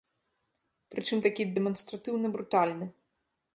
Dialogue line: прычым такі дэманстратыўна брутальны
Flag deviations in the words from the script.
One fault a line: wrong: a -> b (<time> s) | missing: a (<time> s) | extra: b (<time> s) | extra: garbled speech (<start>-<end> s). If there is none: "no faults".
no faults